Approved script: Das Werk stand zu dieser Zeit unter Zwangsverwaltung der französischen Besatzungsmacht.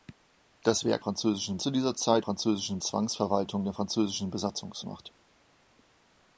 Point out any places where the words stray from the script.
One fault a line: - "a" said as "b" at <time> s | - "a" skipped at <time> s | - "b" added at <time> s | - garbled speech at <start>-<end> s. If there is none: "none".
- "stand" said as "französischen" at 1.0 s
- "unter" said as "französischen" at 2.2 s